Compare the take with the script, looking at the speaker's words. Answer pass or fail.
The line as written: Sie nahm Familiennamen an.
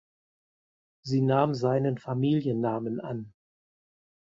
fail